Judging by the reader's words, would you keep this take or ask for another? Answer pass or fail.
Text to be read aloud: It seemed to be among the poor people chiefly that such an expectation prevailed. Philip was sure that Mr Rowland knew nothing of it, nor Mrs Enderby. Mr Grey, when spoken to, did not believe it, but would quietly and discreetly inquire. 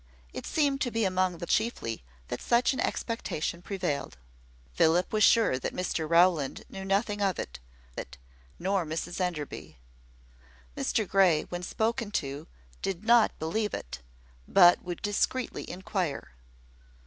fail